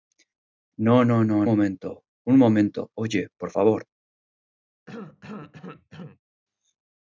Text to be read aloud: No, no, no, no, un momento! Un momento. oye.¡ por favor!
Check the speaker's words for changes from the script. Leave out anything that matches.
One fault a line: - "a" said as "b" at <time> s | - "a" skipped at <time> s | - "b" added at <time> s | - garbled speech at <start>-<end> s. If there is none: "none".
- "no un" skipped at 1.4 s